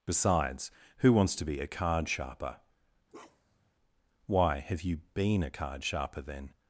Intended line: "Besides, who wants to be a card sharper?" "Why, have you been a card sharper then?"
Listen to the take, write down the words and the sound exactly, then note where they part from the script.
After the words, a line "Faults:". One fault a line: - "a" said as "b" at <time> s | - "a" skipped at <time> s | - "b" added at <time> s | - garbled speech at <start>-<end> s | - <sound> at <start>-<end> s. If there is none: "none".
"Besides, who wants to be a card sharper?" "Why, have you been a card sharper then?"
Faults:
- bark at 3.1-3.7 s